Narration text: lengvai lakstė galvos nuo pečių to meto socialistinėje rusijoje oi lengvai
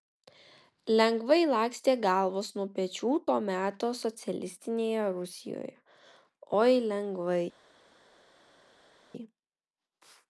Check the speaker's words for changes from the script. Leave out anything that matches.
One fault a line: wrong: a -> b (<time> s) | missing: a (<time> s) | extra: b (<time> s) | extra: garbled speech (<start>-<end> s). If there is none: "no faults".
no faults